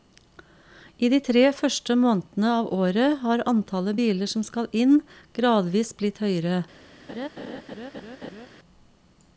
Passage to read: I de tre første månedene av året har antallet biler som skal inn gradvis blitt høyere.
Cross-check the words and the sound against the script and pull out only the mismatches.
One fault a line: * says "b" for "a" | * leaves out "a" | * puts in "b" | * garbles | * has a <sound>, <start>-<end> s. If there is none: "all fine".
* has a laugh, 7.1-8.5 s